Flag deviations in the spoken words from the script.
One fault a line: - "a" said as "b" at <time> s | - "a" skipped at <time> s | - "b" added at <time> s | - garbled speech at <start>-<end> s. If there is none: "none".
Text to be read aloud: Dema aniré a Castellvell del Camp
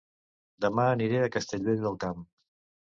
none